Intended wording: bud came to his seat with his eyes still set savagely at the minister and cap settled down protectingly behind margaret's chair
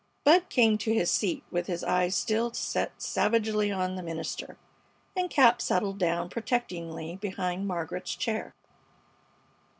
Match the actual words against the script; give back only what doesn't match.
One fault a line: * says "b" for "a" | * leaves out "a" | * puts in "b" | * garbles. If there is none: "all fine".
* says "on" for "at"